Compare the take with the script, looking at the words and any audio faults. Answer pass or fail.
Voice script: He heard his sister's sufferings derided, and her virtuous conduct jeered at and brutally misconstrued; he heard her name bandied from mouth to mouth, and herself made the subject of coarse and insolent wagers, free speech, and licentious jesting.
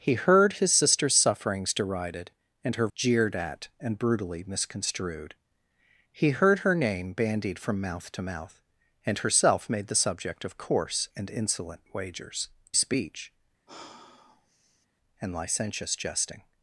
fail